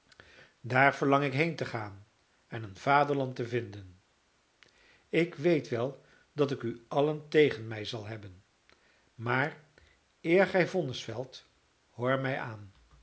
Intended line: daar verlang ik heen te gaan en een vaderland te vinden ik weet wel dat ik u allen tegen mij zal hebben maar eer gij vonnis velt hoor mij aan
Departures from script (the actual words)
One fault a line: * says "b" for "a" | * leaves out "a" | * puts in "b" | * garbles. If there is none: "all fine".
all fine